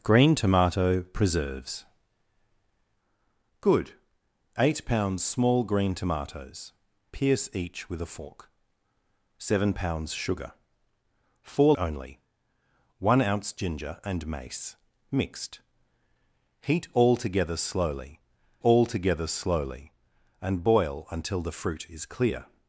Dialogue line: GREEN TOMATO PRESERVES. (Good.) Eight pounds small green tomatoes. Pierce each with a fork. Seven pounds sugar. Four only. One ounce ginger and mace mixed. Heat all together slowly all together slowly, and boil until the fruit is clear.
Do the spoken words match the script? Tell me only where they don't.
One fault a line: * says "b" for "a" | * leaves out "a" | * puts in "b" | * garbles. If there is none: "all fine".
all fine